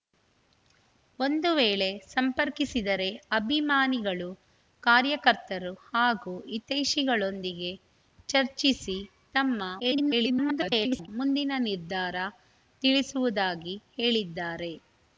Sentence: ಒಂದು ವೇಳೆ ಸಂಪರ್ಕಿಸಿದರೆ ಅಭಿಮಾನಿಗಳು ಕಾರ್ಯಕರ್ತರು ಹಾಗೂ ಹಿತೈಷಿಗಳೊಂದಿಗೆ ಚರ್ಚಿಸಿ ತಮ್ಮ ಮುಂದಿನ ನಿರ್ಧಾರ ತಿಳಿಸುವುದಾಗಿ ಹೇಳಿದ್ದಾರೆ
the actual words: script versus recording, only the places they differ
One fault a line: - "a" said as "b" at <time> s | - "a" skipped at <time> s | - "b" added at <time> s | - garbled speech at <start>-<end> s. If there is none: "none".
- garbled speech at 9.8-11.1 s